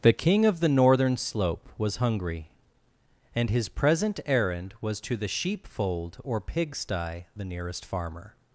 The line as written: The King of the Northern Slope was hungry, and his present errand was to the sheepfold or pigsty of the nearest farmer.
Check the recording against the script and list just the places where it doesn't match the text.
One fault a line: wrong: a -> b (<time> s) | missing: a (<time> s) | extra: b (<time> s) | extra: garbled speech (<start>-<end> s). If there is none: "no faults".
missing: of (7.2 s)